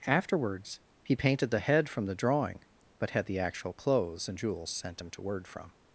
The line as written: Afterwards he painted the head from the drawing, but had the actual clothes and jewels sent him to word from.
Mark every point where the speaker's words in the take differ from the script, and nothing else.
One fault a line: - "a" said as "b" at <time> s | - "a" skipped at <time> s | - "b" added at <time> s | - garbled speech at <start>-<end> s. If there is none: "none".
none